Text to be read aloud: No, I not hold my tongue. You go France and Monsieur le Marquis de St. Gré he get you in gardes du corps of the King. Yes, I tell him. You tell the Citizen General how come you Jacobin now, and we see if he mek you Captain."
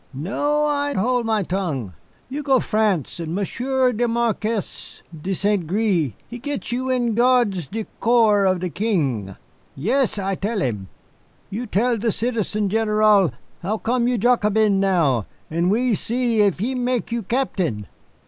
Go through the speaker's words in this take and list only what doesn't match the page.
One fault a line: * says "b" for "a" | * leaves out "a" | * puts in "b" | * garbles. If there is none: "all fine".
* leaves out "not"